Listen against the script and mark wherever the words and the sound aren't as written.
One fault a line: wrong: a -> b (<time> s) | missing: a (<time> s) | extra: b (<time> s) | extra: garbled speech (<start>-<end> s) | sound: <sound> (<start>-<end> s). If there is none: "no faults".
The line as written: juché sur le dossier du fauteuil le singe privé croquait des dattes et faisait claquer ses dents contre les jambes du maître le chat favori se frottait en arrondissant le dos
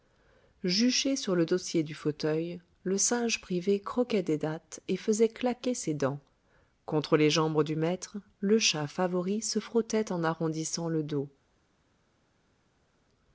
no faults